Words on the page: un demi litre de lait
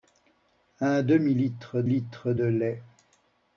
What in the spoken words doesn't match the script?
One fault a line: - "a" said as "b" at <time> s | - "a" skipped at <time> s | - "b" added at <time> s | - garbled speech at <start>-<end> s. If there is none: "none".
- "litre" added at 1.9 s